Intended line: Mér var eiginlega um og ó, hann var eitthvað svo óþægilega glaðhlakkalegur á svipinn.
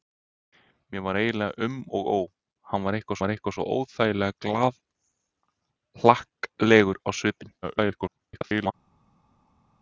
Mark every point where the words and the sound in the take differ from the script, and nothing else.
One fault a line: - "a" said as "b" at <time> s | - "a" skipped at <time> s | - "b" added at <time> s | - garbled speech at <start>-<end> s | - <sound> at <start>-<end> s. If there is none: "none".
- "var eitthvað" added at 3.2 s
- garbled speech at 7.6-8.7 s